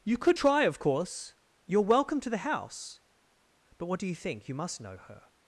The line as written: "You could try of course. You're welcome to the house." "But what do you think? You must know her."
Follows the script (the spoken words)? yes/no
yes